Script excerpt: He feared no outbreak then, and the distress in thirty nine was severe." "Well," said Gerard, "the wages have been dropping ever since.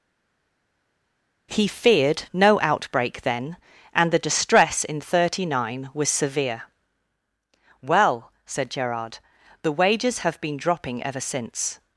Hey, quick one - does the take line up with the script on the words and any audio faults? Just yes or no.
yes